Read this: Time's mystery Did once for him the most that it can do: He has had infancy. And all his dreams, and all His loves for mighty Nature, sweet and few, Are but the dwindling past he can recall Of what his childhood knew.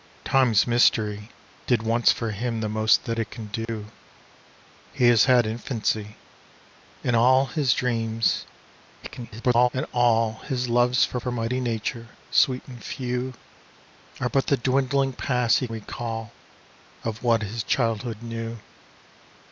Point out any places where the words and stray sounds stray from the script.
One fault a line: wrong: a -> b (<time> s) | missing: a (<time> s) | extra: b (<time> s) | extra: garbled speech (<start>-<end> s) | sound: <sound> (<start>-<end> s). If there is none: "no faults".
sound: dropout (3.6-3.7 s)
extra: garbled speech (9.0-9.7 s)
extra: for (11.2 s)
missing: can (15.7 s)